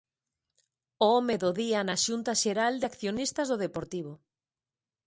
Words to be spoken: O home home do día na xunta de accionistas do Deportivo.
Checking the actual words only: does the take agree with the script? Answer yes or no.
no